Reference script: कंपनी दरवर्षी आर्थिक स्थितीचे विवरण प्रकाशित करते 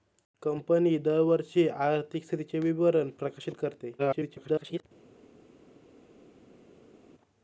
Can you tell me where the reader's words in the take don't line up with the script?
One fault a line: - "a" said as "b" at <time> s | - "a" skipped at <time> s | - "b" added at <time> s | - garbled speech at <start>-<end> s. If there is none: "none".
- garbled speech at 4.0-4.8 s